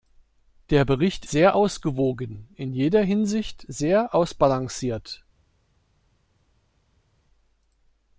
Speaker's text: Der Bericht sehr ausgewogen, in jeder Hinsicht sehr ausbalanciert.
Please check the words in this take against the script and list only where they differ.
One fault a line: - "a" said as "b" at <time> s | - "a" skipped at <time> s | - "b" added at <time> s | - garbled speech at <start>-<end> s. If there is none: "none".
none